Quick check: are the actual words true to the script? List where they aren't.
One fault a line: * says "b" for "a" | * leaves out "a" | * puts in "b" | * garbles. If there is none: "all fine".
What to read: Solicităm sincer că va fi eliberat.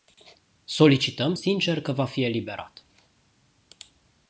all fine